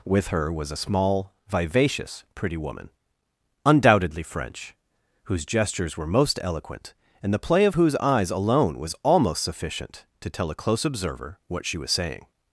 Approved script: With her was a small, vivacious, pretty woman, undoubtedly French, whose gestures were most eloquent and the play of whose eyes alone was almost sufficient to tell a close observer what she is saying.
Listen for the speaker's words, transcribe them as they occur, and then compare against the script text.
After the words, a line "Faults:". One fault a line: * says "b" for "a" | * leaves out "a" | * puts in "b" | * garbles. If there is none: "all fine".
With her was a small, vivacious, pretty woman, undoubtedly French, whose gestures were most eloquent and the play of whose eyes alone was almost sufficient to tell a close observer what she was saying.
Faults:
* says "was" for "is"